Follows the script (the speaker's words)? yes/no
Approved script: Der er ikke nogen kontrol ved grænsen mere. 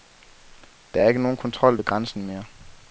yes